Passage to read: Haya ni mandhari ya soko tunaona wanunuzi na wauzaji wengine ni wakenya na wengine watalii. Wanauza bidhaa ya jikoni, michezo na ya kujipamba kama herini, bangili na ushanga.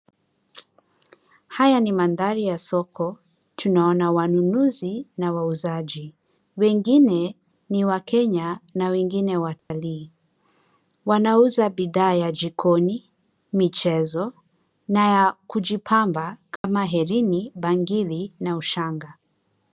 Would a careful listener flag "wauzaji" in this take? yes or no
no